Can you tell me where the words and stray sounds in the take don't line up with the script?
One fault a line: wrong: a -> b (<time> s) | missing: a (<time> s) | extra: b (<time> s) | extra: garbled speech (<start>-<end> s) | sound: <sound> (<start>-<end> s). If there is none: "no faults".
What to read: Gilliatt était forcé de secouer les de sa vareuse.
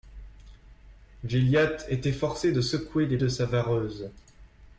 no faults